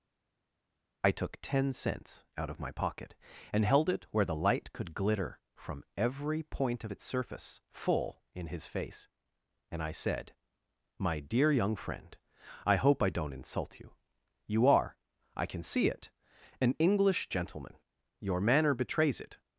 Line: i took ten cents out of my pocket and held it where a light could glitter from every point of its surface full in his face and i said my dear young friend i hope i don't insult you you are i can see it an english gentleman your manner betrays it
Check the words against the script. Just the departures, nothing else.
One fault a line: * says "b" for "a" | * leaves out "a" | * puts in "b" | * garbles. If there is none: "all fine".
* says "the" for "a"